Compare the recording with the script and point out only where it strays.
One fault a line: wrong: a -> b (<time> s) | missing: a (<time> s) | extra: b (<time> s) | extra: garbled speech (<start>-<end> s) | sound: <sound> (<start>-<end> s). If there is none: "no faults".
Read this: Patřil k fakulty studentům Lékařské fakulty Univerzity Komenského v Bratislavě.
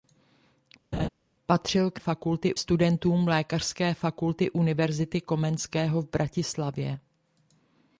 sound: laugh (0.9-1.1 s)